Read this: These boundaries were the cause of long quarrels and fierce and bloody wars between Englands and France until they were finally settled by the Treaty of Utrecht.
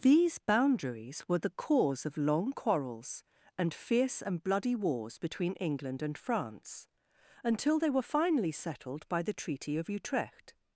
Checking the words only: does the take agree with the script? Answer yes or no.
no